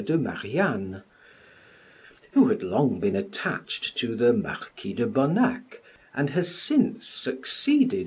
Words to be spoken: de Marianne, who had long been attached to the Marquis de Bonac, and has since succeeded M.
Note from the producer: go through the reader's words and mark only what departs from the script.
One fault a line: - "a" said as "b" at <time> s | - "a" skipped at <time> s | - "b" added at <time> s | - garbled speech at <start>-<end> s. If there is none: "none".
none